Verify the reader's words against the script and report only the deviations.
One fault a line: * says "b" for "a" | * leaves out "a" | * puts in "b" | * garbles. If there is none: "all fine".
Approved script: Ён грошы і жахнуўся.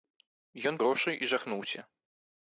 all fine